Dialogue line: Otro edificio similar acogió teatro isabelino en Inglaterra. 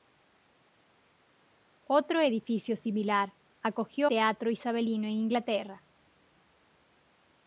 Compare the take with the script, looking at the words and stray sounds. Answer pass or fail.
pass